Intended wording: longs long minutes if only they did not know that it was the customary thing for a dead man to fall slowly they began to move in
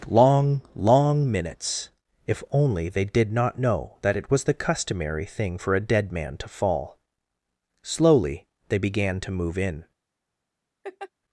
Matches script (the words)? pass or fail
fail